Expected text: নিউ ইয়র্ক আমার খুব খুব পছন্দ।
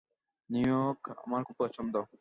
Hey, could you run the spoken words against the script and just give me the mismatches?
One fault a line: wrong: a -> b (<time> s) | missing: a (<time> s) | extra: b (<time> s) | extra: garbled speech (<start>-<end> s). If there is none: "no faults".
missing: খুব (1.6 s)